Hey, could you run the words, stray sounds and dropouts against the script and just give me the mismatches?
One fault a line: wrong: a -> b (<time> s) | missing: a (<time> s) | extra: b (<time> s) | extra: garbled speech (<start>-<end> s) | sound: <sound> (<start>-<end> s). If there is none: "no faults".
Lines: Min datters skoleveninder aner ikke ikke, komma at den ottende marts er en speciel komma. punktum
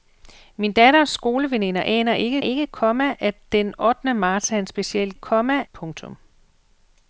no faults